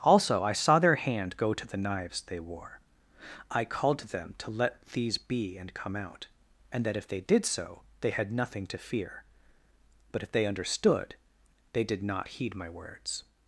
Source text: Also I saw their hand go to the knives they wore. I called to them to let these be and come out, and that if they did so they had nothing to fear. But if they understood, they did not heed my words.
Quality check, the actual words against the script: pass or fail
pass